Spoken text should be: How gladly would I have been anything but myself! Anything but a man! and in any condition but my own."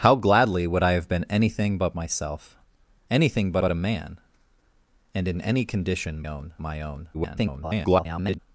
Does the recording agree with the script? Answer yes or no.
no